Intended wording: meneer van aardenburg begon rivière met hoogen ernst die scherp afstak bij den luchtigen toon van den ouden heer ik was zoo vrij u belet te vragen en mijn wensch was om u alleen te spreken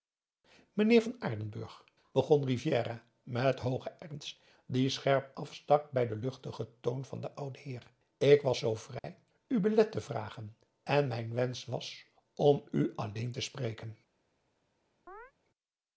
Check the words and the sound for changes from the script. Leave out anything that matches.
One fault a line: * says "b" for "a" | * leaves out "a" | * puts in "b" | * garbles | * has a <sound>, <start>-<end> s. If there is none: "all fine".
* has a dropout, 9.0-9.0 s
* has a chirp, 15.1-15.3 s